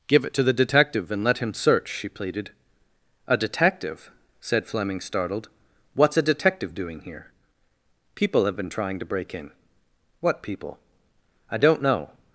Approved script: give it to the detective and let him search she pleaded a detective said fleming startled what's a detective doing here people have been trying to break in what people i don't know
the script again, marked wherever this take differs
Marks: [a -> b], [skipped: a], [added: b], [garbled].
give it to the detective and let him search she pleaded a detective said fleming startled what's a detective doing here people have been trying to break in what people i don't know